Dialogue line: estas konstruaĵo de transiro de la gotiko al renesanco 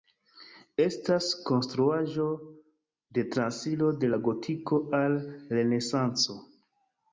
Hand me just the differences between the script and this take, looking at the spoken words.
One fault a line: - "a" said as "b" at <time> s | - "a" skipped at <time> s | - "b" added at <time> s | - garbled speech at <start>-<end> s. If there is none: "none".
none